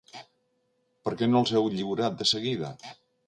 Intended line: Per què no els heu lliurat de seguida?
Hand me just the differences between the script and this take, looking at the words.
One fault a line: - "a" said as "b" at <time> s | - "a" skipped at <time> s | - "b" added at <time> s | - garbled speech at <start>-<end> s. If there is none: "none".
none